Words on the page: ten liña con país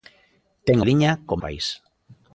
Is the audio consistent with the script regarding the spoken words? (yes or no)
yes